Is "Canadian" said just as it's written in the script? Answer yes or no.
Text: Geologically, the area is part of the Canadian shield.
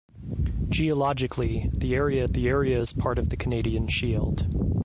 yes